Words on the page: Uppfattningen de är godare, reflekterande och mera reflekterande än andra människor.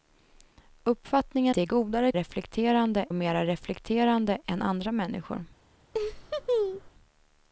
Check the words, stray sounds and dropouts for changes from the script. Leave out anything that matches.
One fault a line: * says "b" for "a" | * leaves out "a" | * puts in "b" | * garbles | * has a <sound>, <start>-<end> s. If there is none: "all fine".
* has a laugh, 5.9-6.9 s